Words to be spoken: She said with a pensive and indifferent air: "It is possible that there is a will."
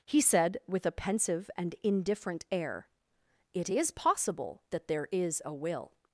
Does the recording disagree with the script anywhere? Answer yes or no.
yes